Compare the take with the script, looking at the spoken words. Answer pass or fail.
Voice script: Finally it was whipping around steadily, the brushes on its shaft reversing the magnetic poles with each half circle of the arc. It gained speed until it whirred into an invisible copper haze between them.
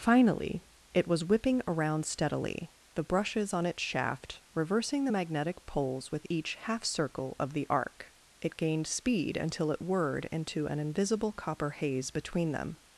pass